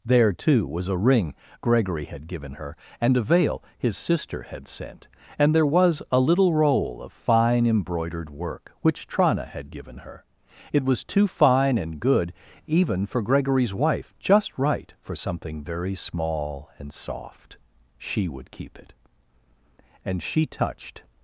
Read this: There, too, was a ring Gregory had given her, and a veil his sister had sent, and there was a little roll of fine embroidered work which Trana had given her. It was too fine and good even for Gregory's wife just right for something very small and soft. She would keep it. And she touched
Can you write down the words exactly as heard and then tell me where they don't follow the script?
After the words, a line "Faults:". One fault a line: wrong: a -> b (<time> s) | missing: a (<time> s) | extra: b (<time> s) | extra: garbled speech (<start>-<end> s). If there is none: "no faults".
There, too, was a ring Gregory had given her, and a veil his sister had sent, and there was a little roll of fine embroidered work which Trana had given her. It was too fine and good even for Gregory's wife just right for something very small and soft. She would keep it. And she touched
Faults:
no faults